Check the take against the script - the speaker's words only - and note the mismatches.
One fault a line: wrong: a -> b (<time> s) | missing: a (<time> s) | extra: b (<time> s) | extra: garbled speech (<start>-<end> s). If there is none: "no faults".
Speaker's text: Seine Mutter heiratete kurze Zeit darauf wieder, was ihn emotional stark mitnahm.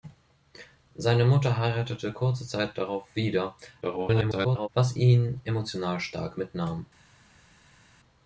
extra: garbled speech (3.8-4.7 s)